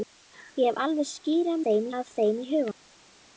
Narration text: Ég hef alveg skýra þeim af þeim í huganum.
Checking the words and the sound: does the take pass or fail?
pass